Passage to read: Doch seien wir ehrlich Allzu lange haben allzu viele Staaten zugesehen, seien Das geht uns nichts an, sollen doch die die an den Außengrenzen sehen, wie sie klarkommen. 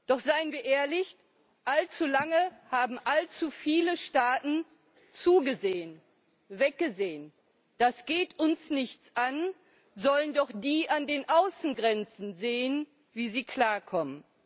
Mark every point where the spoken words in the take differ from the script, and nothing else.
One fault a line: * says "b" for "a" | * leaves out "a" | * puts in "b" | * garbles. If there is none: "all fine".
* says "weggesehen" for "seien"
* leaves out "die"